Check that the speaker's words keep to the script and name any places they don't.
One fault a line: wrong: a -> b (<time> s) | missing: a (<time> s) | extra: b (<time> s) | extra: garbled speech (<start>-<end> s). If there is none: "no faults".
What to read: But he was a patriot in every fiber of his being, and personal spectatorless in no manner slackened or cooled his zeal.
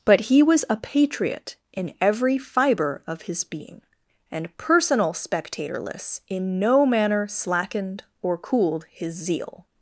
no faults